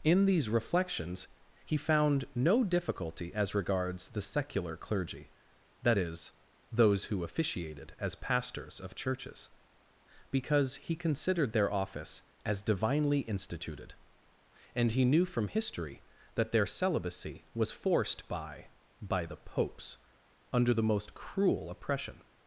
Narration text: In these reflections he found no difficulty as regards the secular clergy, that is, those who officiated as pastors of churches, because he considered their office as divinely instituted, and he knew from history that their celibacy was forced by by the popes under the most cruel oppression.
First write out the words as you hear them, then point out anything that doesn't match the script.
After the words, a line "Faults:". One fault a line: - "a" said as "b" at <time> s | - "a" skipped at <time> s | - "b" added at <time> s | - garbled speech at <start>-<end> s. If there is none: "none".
In these reflections he found no difficulty as regards the secular clergy, that is, those who officiated as pastors of churches, because he considered their office as divinely instituted, and he knew from history that their celibacy was forced by by the popes under the most cruel oppression.
Faults:
none